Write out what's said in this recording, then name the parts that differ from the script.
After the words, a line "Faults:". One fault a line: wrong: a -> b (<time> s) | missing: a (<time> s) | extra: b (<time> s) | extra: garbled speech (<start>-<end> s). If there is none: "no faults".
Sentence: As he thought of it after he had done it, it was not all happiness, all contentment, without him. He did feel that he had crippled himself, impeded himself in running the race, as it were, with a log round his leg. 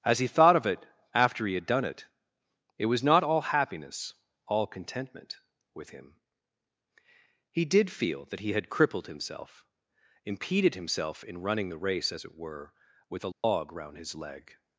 As he thought of it after he had done it, it was not all happiness, all contentment, with him. He did feel that he had crippled himself, impeded himself in running the race, as it were, with a log round his leg.
Faults:
wrong: without -> with (5.7 s)